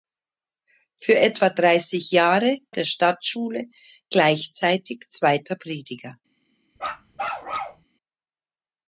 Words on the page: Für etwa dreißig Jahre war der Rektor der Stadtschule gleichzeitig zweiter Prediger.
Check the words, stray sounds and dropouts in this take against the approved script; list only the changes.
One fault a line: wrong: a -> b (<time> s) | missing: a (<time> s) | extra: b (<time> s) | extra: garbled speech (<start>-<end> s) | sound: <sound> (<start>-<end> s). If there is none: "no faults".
missing: war der Rektor (2.6 s)
sound: bark (6.8-7.8 s)